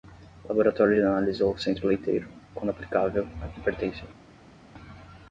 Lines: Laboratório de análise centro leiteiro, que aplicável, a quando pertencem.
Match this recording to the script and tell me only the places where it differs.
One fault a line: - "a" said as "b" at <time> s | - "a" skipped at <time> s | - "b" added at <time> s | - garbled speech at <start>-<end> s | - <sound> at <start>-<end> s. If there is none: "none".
- "ou" added at 1.4 s
- "que" said as "quando" at 2.5 s
- "quando" said as "que" at 3.5 s